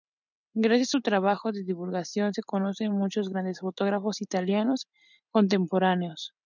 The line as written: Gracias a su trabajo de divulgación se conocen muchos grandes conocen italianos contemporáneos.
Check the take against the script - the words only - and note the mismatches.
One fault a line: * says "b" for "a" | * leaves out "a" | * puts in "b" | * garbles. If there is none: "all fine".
* says "fotógrafos" for "conocen"